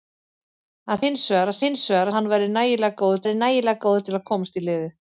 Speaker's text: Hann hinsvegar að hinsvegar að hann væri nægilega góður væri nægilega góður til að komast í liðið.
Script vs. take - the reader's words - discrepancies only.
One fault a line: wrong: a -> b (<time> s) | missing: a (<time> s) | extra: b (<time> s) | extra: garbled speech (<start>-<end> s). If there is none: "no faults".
no faults